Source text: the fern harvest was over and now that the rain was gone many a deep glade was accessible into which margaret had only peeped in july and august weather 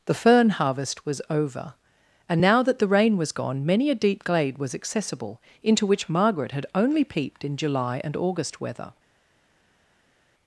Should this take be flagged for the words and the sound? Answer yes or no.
no